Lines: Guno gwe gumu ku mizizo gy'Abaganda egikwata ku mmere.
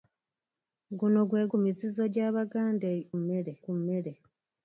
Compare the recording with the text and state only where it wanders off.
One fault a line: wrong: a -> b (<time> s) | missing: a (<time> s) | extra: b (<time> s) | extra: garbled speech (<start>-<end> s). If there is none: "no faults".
missing: gumu (1.4 s)
wrong: egikwata -> mmere (3.2 s)